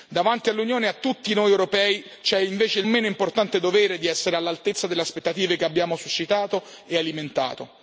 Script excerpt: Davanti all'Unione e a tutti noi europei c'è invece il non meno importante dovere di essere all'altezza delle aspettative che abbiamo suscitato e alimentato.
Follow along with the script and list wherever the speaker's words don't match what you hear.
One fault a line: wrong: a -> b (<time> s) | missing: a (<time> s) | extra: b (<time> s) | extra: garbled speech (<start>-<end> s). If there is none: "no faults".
missing: non (2.9 s)